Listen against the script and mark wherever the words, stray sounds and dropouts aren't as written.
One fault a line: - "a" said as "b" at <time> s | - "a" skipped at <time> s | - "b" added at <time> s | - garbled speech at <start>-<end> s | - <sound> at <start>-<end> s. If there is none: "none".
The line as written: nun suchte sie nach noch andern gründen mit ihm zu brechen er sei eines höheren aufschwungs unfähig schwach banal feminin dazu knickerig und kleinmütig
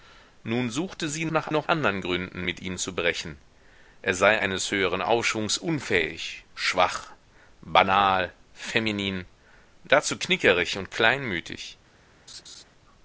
- laugh at 12.3-12.6 s